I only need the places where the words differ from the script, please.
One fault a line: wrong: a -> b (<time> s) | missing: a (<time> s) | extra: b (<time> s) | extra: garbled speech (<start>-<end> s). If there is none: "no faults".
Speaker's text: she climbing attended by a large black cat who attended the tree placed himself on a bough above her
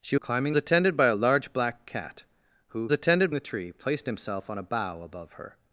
no faults